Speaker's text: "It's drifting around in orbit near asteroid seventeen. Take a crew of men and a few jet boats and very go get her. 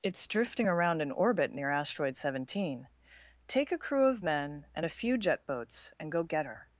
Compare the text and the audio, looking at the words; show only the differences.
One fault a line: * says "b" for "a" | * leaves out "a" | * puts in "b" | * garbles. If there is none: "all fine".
* leaves out "very"